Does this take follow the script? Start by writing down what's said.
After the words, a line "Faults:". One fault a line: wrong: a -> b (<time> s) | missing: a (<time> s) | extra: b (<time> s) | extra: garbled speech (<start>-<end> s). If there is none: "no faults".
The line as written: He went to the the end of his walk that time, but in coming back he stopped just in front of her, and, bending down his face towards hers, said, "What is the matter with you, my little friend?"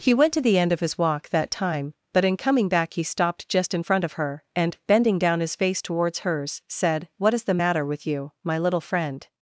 He went to the end of his walk that time, but in coming back he stopped just in front of her, and, bending down his face towards hers, said, "What is the matter with you, my little friend?"
Faults:
missing: the (0.6 s)